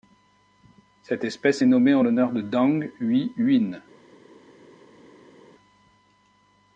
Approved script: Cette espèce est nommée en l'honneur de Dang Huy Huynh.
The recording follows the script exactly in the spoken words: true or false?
true